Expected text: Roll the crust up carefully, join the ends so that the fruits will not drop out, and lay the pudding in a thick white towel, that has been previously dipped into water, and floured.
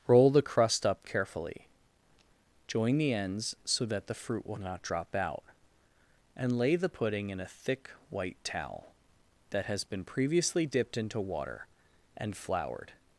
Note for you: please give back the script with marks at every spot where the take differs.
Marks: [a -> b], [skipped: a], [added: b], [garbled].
Roll the crust up carefully, join the ends so that the [fruits -> fruit] will not drop out, and lay the pudding in a thick white towel, that has been previously dipped into water, and floured.